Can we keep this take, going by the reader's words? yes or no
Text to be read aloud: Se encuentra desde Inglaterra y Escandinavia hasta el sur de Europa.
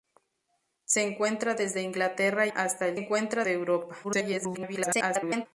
no